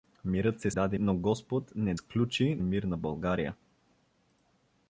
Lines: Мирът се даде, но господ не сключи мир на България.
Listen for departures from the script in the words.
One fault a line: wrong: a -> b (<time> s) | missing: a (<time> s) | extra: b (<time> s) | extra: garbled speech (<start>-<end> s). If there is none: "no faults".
no faults